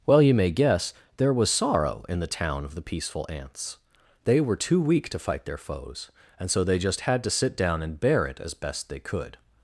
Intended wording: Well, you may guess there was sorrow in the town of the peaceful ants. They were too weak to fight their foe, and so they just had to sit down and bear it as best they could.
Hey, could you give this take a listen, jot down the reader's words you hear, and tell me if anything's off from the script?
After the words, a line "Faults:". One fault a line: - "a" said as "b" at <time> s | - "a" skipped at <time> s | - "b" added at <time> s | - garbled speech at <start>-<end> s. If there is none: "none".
Well, you may guess there was sorrow in the town of the peaceful ants. They were too weak to fight their foes, and so they just had to sit down and bear it as best they could.
Faults:
- "foe" said as "foes" at 5.6 s